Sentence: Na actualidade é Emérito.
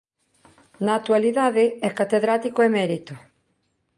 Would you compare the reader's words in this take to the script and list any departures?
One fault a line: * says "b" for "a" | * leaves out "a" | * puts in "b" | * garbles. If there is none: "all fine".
* puts in "Catedrático"